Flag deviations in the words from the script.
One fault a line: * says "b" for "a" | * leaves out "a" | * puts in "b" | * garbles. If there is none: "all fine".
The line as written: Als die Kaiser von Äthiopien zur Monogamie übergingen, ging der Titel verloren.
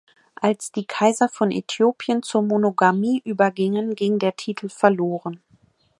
all fine